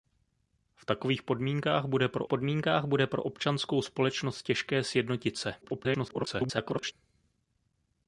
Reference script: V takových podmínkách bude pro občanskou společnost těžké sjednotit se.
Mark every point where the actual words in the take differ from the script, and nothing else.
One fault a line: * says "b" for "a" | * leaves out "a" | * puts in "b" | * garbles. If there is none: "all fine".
* puts in "podmínkách bude pro"
* garbles